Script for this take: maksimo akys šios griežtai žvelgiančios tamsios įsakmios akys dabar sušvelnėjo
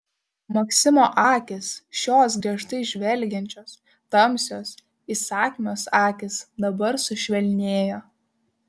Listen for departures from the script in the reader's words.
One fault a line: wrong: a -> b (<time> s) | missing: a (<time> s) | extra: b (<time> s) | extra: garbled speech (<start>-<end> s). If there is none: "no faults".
no faults